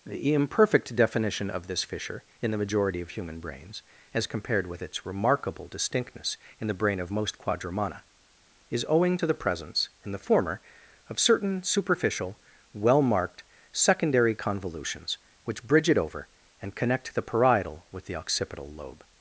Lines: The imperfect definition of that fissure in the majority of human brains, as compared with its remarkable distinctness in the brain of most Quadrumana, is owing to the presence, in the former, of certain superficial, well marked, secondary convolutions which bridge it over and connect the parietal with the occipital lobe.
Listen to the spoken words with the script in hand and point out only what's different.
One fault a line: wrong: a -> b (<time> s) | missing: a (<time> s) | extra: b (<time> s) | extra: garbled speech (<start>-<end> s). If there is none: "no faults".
wrong: that -> this (1.7 s)